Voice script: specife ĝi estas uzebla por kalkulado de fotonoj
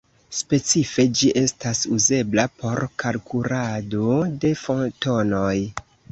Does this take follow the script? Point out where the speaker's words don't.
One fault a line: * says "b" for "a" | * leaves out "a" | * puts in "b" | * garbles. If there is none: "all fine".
all fine